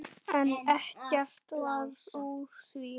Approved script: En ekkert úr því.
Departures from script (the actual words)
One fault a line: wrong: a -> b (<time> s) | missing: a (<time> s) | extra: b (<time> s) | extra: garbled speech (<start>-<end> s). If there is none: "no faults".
extra: varð (1.6 s)